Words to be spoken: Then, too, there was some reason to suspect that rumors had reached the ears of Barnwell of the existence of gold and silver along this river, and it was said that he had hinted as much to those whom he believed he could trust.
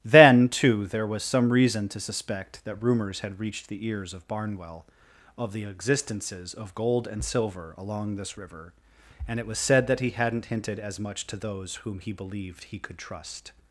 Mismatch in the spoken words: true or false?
true